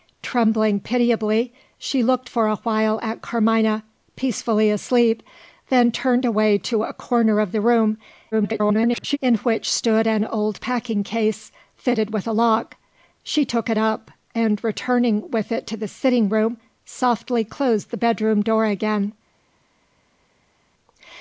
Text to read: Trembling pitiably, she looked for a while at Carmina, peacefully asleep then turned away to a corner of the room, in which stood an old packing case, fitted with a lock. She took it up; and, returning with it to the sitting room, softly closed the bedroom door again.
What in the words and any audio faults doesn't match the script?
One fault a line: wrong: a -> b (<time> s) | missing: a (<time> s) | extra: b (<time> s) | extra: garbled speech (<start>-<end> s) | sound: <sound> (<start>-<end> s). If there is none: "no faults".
extra: garbled speech (8.3-9.2 s)